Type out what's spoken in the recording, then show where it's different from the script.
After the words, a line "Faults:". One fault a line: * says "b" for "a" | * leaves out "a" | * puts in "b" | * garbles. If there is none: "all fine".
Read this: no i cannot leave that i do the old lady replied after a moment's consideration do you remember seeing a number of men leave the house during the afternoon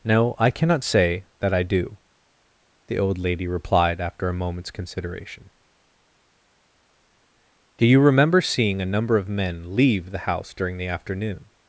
no i cannot say that i do the old lady replied after a moment's consideration do you remember seeing a number of men leave the house during the afternoon
Faults:
* says "say" for "leave"